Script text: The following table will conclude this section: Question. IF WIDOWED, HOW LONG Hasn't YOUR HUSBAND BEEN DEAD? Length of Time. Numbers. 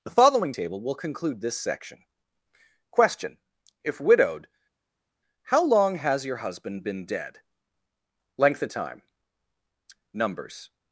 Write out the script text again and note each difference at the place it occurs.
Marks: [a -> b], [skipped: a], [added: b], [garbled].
The following table will conclude this section: Question. IF WIDOWED, HOW LONG [Hasn't -> HAS] YOUR HUSBAND BEEN DEAD? Length of Time. Numbers.